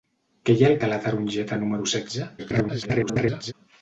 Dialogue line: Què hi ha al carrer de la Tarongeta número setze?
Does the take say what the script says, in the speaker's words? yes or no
no